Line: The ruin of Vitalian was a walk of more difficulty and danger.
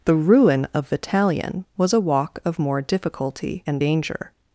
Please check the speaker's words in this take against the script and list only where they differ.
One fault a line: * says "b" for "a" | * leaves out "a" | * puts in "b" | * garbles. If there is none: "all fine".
all fine